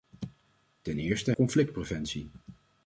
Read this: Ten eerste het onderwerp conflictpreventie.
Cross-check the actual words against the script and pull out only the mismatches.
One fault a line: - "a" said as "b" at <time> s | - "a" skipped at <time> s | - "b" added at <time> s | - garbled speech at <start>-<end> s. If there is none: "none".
- "het onderwerp" skipped at 1.3 s